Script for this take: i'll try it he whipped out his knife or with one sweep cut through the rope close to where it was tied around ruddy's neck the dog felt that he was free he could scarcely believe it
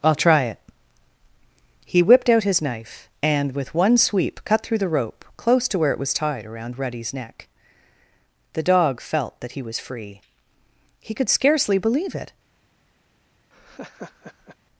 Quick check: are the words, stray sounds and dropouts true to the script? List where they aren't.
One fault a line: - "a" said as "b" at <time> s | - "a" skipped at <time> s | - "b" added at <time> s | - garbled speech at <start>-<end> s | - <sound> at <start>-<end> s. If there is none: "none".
- "or" said as "and" at 3.2 s
- laugh at 13.5-14.6 s